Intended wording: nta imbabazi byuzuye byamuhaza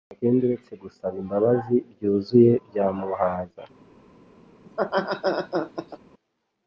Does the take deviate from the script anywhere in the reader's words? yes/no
yes